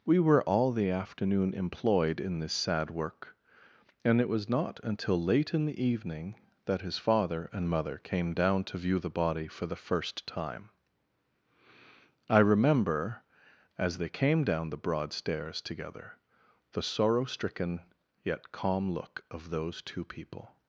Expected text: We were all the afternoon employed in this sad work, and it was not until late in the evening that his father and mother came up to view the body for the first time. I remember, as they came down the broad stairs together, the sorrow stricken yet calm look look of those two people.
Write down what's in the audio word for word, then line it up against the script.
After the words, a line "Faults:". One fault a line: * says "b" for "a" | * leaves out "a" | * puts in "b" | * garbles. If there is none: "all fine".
We were all the afternoon employed in this sad work, and it was not until late in the evening that his father and mother came down to view the body for the first time. I remember, as they came down the broad stairs together, the sorrow stricken yet calm look of those two people.
Faults:
* says "down" for "up"
* leaves out "look"